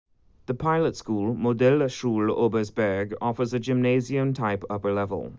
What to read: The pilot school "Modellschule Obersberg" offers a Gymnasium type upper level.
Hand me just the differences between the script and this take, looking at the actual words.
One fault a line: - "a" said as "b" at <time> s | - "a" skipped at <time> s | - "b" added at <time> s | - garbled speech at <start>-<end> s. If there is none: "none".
none